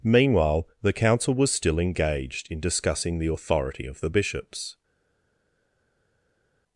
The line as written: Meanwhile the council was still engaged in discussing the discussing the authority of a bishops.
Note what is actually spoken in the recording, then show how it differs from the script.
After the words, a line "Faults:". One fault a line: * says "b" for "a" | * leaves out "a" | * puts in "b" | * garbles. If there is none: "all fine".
Meanwhile the council was still engaged in discussing the authority of the bishops.
Faults:
* leaves out "discussing the"
* says "the" for "a"